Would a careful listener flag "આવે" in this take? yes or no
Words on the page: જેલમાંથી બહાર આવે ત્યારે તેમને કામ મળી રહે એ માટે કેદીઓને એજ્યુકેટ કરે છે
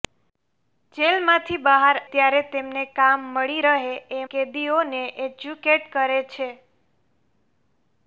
yes